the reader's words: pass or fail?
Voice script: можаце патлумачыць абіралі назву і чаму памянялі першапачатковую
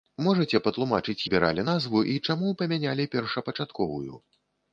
pass